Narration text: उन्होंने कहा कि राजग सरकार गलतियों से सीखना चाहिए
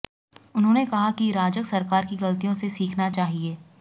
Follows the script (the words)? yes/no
no